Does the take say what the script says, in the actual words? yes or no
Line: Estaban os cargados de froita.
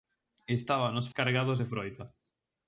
yes